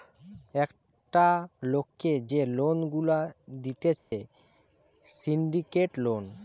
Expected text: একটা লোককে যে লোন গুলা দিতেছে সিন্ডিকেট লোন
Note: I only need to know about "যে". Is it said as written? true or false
true